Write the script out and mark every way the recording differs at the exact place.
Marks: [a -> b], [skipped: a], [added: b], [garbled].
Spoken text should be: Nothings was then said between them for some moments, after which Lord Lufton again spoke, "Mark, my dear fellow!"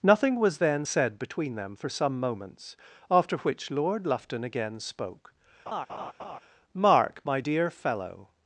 [Nothings -> Nothing] was then said between them for some moments, after which Lord Lufton again spoke, "Mark, my dear fellow!"